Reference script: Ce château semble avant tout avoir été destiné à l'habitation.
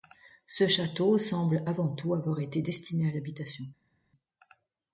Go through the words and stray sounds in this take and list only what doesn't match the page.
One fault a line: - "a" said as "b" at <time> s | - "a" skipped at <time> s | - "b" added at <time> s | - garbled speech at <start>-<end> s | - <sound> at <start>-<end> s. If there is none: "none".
none